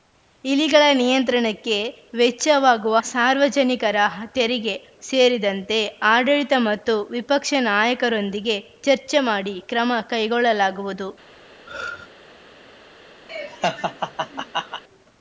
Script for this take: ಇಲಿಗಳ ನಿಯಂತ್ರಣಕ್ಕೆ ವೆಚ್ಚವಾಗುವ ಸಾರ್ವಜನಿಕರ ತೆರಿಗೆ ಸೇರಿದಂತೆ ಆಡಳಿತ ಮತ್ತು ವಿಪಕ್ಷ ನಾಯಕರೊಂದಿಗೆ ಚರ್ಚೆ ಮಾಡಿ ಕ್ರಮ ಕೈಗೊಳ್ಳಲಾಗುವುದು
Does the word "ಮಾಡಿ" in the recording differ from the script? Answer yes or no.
no